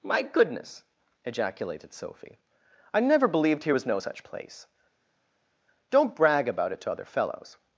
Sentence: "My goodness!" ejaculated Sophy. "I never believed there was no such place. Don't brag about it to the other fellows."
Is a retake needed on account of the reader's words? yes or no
yes